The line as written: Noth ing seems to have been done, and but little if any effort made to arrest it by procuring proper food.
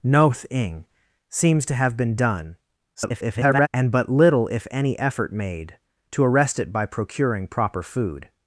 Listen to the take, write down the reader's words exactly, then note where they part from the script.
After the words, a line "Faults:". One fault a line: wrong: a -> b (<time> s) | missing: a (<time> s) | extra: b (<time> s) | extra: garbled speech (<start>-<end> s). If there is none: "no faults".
Noth ing seems to have been done, [garbled] and but little if any effort made to arrest it by procuring proper food.
Faults:
extra: garbled speech (2.9-3.7 s)